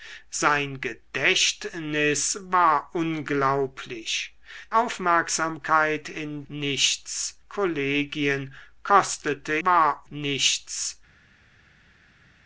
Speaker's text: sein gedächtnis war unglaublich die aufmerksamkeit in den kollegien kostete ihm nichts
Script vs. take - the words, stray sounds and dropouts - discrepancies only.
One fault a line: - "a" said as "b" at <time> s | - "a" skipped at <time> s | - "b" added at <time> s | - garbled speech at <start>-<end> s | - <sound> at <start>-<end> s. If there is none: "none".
- "die" skipped at 4.3 s
- "den" said as "nichts" at 6.5 s
- "ihm" said as "war" at 9.6 s